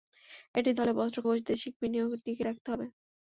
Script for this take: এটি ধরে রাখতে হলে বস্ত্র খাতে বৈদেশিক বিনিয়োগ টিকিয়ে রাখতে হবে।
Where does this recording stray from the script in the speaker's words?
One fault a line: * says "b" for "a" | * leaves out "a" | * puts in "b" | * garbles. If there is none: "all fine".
* leaves out "ধরে রাখতে"
* leaves out "খাতে"